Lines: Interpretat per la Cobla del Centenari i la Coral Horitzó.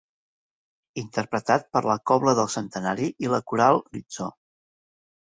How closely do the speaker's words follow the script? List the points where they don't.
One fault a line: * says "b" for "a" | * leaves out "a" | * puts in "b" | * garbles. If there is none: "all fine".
all fine